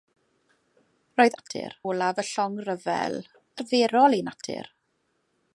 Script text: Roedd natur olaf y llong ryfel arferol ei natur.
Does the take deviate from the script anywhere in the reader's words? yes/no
no